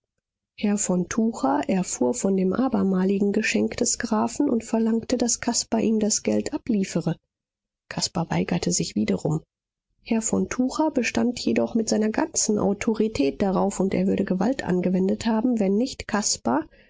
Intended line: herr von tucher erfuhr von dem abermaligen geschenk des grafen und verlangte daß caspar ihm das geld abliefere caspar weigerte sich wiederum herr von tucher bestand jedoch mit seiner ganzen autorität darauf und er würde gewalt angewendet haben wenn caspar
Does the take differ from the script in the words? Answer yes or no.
yes